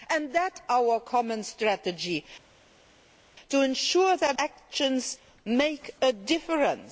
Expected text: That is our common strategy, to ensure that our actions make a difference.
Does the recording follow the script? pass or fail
fail